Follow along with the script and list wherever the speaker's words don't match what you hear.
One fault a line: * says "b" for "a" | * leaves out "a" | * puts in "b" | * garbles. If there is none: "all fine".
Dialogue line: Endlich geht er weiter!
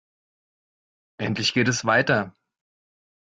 * says "es" for "er"